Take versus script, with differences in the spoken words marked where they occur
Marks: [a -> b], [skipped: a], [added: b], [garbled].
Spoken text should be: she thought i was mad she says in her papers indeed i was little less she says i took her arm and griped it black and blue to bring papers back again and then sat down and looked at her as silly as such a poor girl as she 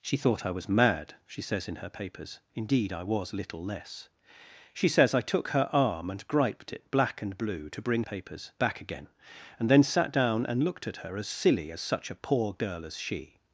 she thought i was mad she says in her papers indeed i was little less she says i took her arm and griped it black and blue to bring papers back again and then sat down and looked at her as silly as such a poor girl as she